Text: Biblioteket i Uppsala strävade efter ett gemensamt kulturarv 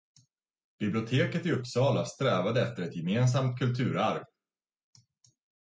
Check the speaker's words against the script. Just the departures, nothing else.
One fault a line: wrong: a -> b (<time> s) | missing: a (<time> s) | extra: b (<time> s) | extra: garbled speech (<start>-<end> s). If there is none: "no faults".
no faults